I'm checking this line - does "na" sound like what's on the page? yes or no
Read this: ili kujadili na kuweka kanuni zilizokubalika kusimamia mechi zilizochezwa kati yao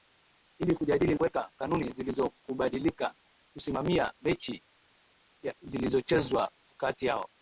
no